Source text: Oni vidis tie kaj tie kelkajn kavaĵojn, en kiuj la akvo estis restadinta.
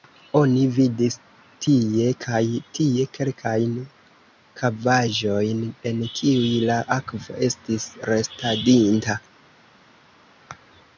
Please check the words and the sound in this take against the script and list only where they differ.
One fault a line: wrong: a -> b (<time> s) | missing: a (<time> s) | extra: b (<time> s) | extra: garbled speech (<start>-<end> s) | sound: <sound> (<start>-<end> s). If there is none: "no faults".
no faults